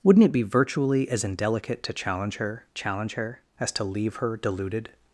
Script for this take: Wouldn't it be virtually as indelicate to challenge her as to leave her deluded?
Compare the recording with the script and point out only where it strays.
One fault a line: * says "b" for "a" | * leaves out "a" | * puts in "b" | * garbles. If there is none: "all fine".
* puts in "challenge her"